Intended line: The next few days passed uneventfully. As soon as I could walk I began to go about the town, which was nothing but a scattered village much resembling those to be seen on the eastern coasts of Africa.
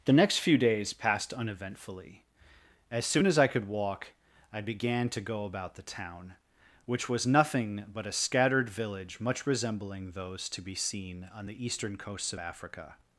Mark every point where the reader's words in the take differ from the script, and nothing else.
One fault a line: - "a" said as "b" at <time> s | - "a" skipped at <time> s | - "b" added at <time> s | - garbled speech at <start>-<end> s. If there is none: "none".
none